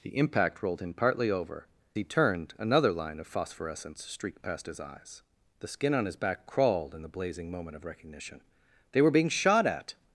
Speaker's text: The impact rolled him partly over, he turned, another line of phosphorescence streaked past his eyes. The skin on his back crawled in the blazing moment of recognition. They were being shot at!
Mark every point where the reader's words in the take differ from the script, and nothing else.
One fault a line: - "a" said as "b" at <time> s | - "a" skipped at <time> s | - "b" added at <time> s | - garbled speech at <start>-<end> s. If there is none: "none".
none